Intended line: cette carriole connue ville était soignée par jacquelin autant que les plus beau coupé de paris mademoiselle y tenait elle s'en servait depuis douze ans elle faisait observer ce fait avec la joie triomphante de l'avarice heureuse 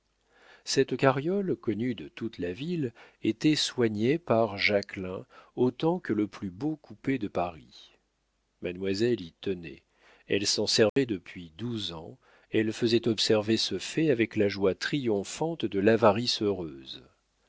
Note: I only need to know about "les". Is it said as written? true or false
false